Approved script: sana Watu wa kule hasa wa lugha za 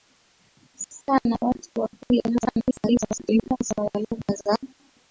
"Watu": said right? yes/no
yes